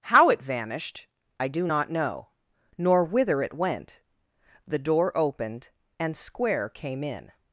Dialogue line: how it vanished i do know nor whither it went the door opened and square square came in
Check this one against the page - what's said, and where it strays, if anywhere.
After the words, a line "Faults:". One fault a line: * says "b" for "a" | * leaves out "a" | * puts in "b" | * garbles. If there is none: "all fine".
how it vanished i do not know nor whither it went the door opened and square came in
Faults:
* puts in "not"
* leaves out "square"